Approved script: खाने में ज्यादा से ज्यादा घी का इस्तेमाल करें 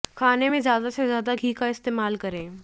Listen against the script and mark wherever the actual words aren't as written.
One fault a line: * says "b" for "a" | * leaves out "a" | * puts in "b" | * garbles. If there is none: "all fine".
all fine